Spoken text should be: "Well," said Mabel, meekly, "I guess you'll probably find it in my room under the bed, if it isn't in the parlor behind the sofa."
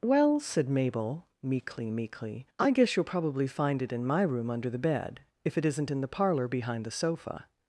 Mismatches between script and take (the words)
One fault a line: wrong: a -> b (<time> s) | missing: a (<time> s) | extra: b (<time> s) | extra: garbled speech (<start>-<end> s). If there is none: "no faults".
extra: meekly (1.9 s)